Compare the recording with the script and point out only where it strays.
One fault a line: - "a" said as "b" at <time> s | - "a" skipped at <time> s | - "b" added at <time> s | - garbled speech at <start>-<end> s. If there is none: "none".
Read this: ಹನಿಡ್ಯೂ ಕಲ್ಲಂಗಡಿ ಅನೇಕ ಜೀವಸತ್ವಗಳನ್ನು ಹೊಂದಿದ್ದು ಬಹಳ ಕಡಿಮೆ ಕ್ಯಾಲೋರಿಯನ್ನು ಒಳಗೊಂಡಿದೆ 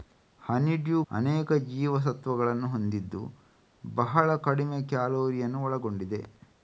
- "ಕಲ್ಲಂಗಡಿ" skipped at 1.0 s